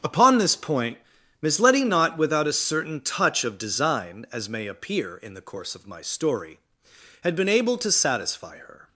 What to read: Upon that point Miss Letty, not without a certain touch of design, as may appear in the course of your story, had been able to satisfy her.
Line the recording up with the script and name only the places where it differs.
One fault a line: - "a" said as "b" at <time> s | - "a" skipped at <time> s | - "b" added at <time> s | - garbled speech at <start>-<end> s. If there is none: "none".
- "that" said as "this" at 0.4 s
- "your" said as "my" at 5.9 s